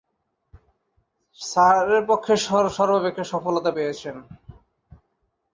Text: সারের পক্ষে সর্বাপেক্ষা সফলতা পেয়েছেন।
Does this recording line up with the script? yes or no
yes